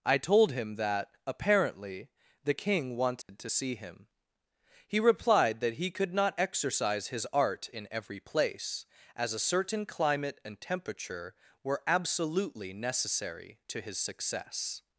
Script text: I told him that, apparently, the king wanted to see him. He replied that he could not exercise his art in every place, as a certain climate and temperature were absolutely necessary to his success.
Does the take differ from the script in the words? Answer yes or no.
no